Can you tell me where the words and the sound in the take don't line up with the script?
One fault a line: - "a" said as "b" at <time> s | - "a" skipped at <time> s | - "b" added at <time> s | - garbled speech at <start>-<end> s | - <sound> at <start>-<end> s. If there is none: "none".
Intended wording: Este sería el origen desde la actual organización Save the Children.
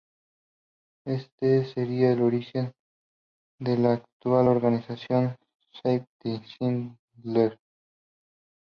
- "desde" said as "de" at 3.6 s